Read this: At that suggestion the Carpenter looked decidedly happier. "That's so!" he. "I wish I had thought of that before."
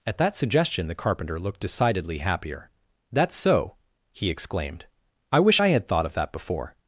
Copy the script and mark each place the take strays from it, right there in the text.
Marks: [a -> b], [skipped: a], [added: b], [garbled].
At that suggestion the Carpenter looked decidedly happier. "That's so!" he. [added: exclaimed] "I wish I had thought of that before."